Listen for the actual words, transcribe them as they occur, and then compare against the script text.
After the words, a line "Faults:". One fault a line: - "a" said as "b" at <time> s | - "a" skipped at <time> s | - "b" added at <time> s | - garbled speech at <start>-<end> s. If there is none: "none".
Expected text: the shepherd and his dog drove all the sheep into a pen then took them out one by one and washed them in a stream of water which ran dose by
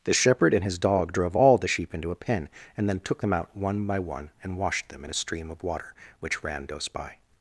the shepherd and his dog drove all the sheep into a pen and then took them out one by one and washed them in a stream of water which ran dose by
Faults:
- "and" added at 2.8 s